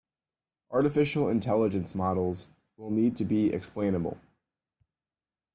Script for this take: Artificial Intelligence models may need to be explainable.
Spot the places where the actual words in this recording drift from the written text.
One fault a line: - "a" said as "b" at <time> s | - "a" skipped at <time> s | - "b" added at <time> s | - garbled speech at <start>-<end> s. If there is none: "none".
- "may" said as "will" at 2.8 s